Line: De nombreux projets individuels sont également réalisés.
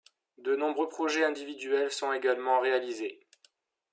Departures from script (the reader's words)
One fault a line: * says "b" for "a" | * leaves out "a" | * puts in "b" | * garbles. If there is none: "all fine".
all fine